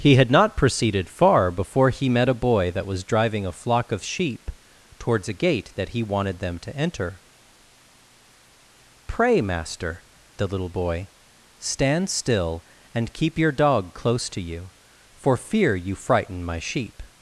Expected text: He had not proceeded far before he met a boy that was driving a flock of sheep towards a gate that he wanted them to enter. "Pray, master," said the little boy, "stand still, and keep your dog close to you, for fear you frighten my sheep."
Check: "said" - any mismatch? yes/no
yes